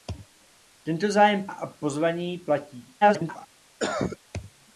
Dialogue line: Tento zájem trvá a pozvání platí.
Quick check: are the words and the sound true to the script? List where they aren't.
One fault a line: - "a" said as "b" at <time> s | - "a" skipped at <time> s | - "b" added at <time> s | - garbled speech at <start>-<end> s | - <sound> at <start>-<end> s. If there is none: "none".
- "trvá" skipped at 1.5 s
- garbled speech at 3.0-3.5 s
- cough at 3.8-4.2 s